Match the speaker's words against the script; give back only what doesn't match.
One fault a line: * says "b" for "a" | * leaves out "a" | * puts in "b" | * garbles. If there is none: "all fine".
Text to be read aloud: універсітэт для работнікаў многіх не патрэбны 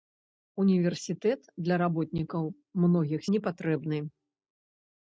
all fine